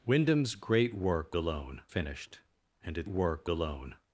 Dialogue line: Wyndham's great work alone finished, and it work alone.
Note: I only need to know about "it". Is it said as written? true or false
true